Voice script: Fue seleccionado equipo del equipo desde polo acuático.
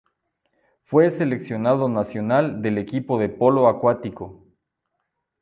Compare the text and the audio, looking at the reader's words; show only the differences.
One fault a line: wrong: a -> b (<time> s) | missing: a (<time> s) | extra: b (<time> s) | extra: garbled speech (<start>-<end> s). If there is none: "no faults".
wrong: equipo -> nacional (1.9 s)
wrong: desde -> de (3.2 s)